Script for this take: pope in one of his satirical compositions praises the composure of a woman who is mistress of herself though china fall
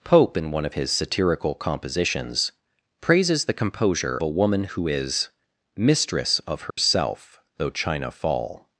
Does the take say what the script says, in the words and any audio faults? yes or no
no